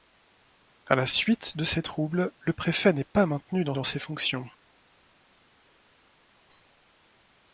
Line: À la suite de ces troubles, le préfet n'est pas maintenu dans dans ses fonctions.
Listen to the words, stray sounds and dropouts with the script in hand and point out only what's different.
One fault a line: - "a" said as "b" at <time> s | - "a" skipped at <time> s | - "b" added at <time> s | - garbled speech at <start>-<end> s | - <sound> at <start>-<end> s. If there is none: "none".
none